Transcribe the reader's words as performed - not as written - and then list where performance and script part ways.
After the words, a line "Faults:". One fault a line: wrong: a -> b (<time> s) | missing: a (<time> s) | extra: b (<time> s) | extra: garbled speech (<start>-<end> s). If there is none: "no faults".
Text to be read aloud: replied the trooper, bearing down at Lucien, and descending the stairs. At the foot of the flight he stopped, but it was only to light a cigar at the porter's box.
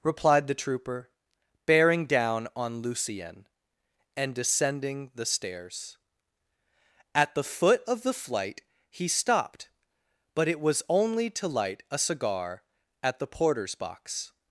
replied the trooper, bearing down on Lucien, and descending the stairs. At the foot of the flight he stopped, but it was only to light a cigar at the porter's box.
Faults:
wrong: at -> on (2.5 s)